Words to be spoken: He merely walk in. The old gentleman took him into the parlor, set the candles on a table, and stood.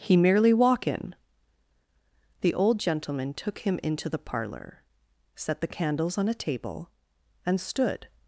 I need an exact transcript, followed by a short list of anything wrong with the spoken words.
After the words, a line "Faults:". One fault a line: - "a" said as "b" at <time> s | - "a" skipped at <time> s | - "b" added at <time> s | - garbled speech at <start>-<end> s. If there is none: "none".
He merely walk in. The old gentleman took him into the parlor, set the candles on a table, and stood.
Faults:
none